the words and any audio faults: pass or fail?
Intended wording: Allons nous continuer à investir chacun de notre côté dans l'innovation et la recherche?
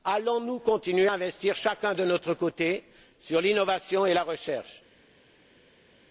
pass